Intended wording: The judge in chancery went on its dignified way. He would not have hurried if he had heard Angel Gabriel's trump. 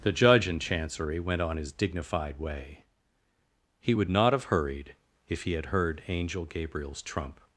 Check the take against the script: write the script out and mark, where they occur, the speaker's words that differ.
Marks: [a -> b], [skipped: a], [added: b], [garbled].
The judge in chancery went on [its -> his] dignified way. He would not have hurried if he had heard Angel Gabriel's trump.